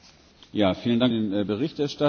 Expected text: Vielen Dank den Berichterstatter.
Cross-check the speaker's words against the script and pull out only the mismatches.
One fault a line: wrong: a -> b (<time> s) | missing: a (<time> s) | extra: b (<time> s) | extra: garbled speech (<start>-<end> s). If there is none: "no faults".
no faults